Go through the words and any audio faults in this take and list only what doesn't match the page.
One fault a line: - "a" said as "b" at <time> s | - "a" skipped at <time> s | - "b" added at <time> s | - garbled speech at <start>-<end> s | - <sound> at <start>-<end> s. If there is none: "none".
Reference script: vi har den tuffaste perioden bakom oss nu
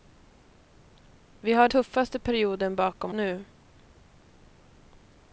- "den" skipped at 1.7 s
- "oss" skipped at 3.1 s